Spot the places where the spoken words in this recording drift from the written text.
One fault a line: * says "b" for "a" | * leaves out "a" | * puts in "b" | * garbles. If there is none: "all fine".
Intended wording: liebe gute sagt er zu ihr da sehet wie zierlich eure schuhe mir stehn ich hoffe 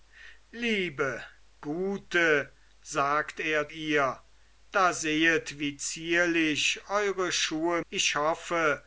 * leaves out "zu"
* leaves out "mir stehn"